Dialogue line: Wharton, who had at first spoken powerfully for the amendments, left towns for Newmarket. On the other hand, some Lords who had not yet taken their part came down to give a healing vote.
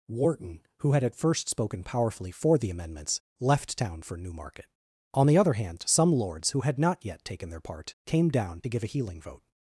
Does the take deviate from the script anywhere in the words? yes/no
yes